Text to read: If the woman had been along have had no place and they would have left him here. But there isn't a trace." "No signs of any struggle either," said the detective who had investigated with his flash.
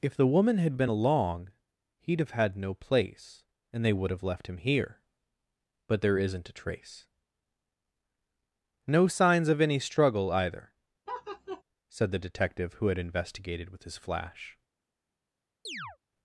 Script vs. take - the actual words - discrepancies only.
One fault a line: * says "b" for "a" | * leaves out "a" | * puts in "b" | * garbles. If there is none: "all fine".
* puts in "he'd"